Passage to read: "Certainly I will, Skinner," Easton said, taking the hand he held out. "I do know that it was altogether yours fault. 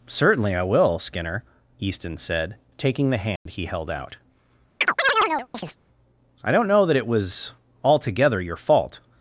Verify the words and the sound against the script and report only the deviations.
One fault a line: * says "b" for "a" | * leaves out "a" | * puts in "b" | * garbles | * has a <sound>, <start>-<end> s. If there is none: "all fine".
* has a dropout, 3.4-3.5 s
* has a chirp, 4.8-5.8 s
* says "don't" for "do"
* says "your" for "yours"